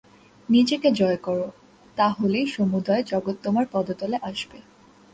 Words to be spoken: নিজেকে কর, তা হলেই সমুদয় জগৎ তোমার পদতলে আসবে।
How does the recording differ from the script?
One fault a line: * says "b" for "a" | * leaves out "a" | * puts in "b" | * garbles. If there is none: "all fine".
* puts in "জয়"